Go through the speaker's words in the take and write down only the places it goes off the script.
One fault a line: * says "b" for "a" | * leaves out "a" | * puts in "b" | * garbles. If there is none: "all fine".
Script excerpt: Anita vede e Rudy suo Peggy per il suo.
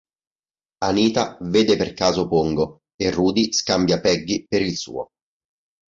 * puts in "per caso Pongo"
* says "scambia" for "suo"